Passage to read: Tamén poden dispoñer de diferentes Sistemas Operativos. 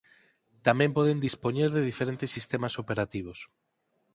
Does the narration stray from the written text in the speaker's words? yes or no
no